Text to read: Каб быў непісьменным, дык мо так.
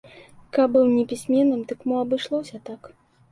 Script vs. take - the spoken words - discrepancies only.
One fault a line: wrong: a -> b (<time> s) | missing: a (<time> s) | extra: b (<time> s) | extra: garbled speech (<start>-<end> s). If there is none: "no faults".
extra: абышлося (2.0 s)